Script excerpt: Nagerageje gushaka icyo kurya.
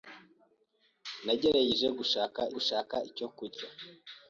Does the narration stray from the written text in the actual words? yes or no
yes